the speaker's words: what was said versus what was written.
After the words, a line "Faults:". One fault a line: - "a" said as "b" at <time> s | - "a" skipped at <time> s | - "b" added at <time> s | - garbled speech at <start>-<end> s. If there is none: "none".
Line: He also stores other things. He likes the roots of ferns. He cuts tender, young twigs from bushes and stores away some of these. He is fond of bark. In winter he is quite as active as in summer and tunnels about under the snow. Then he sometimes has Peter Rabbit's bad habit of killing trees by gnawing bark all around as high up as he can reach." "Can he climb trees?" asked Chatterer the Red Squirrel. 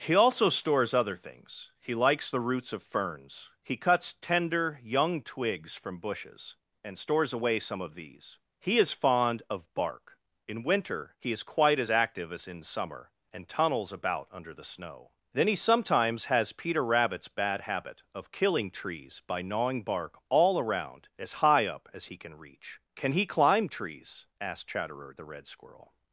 He also stores other things. He likes the roots of ferns. He cuts tender, young twigs from bushes and stores away some of these. He is fond of bark. In winter he is quite as active as in summer and tunnels about under the snow. Then he sometimes has Peter Rabbit's bad habit of killing trees by gnawing bark all around as high up as he can reach." "Can he climb trees?" asked Chatterer the Red Squirrel.
Faults:
none